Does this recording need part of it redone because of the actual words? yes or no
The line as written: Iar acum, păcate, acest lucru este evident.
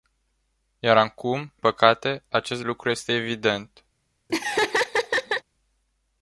no